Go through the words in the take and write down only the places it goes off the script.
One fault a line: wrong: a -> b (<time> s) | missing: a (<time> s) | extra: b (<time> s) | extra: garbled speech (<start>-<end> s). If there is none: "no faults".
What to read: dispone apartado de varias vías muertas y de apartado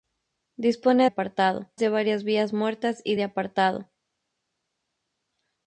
no faults